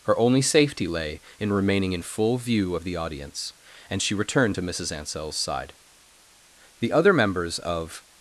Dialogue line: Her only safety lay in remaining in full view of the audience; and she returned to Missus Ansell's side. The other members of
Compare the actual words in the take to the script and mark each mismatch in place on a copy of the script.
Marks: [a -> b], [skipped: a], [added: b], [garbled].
Her only safety lay in remaining in full view of the audience; and she returned to Missus Ansell's side. The other members of